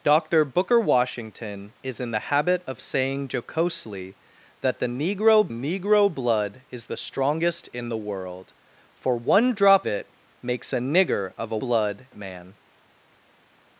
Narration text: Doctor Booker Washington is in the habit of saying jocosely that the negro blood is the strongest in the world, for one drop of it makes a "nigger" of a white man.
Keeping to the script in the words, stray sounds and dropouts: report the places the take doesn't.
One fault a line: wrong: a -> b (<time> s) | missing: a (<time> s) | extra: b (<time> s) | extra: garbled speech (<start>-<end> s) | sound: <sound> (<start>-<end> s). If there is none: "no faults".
extra: negro (5.5 s)
missing: of (9.8 s)
wrong: white -> blood (11.6 s)